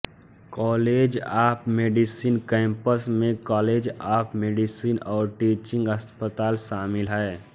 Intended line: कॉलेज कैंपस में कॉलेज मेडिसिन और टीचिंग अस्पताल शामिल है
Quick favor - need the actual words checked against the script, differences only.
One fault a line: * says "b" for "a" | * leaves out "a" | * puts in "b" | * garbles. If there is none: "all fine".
* puts in "ऑफ मेडिसिन"
* puts in "ऑफ"